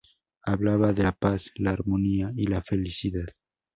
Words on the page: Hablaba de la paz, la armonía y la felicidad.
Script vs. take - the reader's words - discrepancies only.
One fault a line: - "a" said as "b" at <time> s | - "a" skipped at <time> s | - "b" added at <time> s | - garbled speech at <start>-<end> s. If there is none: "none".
none